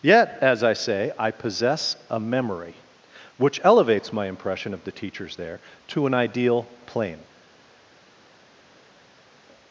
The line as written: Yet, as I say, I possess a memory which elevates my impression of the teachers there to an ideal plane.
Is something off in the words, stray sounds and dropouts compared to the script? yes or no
no